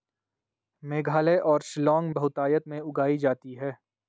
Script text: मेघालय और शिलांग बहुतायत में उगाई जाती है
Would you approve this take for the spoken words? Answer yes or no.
yes